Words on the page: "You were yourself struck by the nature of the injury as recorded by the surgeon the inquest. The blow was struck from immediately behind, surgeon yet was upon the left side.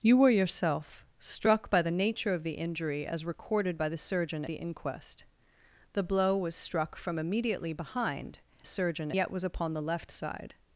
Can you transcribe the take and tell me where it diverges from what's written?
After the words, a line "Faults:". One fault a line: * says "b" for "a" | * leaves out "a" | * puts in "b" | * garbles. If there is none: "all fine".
"You were yourself struck by the nature of the injury as recorded by the surgeon the inquest. The blow was struck from immediately behind, surgeon yet was upon the left side.
Faults:
all fine